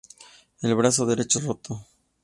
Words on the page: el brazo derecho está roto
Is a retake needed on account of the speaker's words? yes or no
yes